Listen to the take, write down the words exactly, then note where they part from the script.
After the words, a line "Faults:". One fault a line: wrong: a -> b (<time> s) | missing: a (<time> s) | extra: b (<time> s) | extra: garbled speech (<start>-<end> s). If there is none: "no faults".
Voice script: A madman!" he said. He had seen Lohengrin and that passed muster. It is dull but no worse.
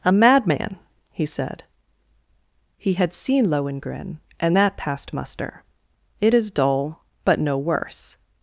A madman!" he said. He had seen Lohengrin and that passed muster. It is dull but no worse.
Faults:
no faults